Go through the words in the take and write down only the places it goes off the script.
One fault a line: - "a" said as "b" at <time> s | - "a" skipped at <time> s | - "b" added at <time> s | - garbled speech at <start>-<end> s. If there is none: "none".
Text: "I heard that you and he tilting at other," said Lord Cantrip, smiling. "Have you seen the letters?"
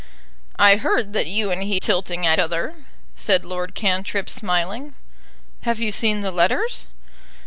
none